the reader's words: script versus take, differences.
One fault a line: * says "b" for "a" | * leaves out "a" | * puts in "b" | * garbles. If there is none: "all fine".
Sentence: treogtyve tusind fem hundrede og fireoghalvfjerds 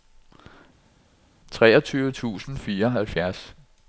* leaves out "fem hundrede og"